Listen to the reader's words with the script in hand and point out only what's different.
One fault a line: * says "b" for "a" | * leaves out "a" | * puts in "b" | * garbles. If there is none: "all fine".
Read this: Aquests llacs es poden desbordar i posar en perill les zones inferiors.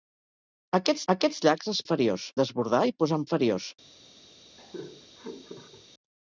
* puts in "aquests"
* says "inferiors" for "poden"
* leaves out "perill les zones"